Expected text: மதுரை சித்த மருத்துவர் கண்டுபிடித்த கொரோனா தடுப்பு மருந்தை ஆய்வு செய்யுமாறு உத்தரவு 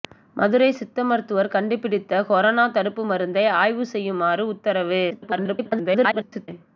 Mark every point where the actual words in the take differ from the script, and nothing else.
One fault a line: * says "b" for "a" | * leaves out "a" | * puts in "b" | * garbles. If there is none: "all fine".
* garbles